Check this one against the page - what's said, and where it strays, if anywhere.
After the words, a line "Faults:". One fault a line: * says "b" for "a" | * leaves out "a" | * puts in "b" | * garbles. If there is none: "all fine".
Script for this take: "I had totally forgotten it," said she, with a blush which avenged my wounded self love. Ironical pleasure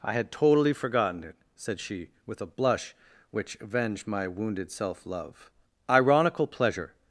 "I had totally forgotten it," said she, with a blush which avenged my wounded self love. Ironical pleasure
Faults:
all fine